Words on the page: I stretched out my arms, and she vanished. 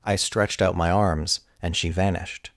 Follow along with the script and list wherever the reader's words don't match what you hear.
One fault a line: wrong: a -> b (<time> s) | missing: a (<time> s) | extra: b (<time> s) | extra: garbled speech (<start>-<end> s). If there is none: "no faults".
no faults